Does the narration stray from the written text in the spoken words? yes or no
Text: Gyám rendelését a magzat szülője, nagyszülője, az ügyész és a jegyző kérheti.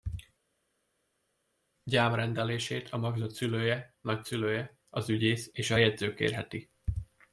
no